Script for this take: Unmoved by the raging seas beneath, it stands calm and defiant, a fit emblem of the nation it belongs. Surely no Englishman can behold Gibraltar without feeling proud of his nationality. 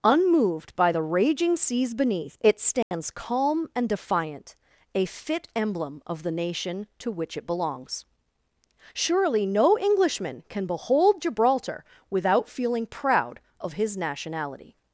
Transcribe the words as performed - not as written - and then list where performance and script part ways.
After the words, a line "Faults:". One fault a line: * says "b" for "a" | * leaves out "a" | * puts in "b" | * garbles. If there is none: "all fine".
Unmoved by the raging seas beneath, it stands calm and defiant, a fit emblem of the nation to which it belongs. Surely no Englishman can behold Gibraltar without feeling proud of his nationality.
Faults:
* puts in "to which"